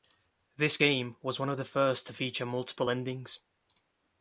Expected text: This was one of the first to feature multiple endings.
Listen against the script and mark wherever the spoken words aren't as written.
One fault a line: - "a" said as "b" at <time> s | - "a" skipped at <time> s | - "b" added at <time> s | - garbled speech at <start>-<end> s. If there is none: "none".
- "game" added at 0.7 s